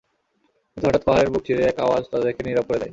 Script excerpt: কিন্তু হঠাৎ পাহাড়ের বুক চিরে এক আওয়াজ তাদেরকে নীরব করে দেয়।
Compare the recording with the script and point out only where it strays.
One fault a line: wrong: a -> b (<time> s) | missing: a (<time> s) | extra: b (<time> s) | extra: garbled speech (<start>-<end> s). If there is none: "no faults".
no faults